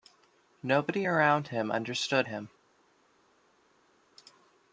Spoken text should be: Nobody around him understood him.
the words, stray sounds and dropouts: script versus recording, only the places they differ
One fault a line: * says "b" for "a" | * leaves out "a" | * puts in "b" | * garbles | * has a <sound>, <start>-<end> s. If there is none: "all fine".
all fine